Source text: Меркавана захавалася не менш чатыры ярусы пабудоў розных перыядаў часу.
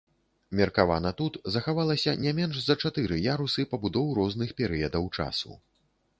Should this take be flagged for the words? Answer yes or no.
yes